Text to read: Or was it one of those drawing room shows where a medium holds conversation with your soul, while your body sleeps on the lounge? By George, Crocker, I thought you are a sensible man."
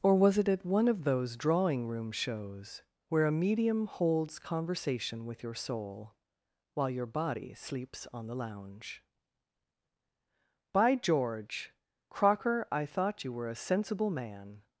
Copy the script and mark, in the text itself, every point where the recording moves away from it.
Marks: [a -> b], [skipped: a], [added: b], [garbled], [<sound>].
Or was it [added: at] one of those drawing room shows where a medium holds conversation with your soul, while your body sleeps on the lounge? By George, Crocker, I thought you [are -> were] a sensible man."